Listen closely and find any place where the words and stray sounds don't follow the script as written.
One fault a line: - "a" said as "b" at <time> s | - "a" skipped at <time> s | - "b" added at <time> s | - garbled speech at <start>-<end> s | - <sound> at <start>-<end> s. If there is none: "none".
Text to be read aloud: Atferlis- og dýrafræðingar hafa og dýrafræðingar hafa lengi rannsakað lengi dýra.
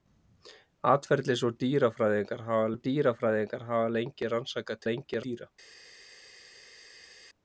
none